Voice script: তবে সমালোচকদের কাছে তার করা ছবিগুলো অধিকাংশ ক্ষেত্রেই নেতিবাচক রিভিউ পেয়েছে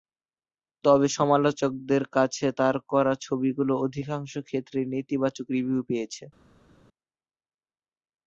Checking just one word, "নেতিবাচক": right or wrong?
right